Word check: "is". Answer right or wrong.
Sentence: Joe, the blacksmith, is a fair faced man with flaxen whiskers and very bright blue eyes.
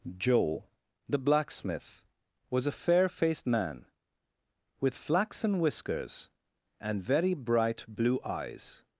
wrong